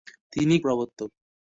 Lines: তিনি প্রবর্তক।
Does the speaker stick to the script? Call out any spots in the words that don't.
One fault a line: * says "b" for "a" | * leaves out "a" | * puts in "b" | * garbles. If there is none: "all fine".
all fine